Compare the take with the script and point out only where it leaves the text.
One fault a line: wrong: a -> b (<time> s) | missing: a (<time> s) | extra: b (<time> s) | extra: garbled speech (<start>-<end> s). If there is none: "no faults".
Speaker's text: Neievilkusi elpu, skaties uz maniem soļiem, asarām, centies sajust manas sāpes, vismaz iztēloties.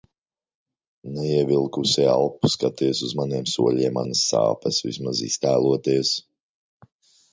missing: asarām centies sajust (4.0 s)